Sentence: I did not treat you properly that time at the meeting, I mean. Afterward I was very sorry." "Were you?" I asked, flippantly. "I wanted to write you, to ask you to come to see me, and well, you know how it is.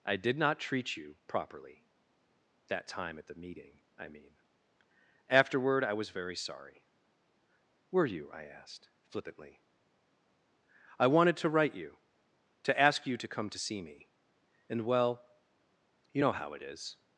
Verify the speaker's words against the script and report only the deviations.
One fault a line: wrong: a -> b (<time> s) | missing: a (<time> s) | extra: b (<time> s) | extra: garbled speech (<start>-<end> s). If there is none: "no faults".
no faults